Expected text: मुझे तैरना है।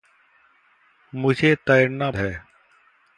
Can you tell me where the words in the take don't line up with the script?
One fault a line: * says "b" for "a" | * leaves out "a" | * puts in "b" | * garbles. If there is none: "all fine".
all fine